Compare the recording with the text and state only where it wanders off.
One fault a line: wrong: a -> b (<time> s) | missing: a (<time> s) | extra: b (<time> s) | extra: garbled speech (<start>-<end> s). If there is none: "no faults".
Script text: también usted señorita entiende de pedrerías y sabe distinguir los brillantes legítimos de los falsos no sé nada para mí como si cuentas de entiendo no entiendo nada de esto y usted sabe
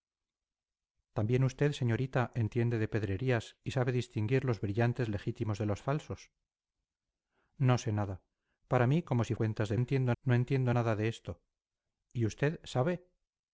no faults